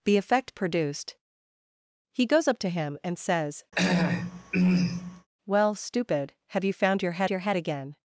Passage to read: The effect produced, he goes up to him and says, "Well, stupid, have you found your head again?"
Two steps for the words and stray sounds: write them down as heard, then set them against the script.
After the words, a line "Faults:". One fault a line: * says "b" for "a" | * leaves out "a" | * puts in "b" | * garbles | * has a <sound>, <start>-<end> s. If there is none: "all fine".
The effect produced, he goes up to him and says, "Well, stupid, have you found your head your head again?"
Faults:
* has a throat clearing, 3.7-5.3 s
* puts in "your head"